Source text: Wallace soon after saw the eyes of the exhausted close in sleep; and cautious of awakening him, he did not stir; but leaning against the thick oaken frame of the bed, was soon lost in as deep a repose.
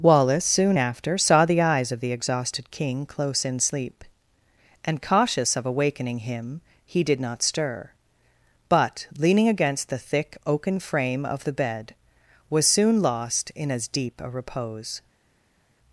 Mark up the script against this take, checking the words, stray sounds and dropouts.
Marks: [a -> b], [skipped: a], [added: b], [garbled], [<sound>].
Wallace soon after saw the eyes of the exhausted [added: king] close in sleep; and cautious of awakening him, he did not stir; but leaning against the thick oaken frame of the bed, was soon lost in as deep a repose.